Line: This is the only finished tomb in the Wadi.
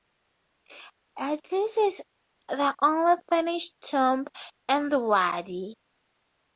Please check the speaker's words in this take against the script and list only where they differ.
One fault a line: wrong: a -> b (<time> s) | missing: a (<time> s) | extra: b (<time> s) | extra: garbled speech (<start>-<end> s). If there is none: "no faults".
no faults